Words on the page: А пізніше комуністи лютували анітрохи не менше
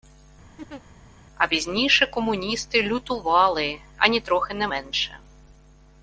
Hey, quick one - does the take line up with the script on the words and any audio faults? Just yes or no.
no